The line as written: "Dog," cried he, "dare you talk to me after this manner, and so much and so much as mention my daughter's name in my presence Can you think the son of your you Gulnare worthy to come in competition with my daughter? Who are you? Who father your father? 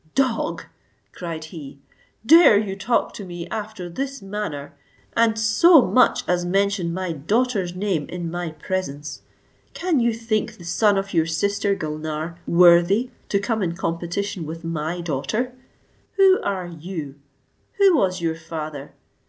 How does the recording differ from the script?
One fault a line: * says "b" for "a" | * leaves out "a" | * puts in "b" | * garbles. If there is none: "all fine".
* leaves out "and so much"
* says "sister" for "you"
* says "was" for "father"